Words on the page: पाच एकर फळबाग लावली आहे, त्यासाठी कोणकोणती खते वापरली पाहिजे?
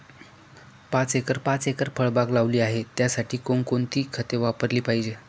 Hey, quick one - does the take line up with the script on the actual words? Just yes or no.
no